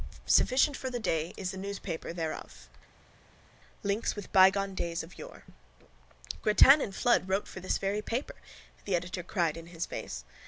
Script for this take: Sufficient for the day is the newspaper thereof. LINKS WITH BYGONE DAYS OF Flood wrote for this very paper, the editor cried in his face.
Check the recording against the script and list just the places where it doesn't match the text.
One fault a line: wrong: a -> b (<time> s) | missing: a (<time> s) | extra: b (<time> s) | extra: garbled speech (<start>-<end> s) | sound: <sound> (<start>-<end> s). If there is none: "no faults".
extra: YORE Grattan and (5.2 s)